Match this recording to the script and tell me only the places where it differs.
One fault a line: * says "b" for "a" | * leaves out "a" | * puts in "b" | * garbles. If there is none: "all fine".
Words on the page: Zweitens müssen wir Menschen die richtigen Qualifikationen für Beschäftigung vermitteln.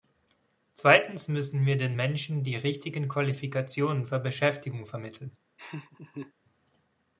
* puts in "den"